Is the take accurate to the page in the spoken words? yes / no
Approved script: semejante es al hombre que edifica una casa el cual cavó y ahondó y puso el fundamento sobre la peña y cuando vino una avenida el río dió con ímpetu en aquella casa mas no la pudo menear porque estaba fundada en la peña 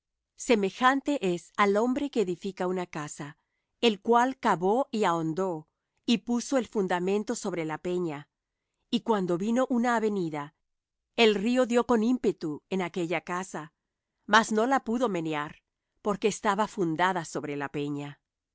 no